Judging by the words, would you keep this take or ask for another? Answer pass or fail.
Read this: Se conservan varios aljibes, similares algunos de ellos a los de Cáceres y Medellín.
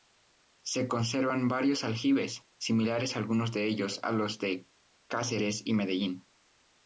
pass